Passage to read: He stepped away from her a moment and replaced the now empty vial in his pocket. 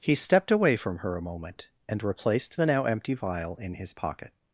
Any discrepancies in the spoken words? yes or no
no